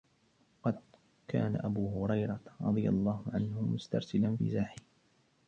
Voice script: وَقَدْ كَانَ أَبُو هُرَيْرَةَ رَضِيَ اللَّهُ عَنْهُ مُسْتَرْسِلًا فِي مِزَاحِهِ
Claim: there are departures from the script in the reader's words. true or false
true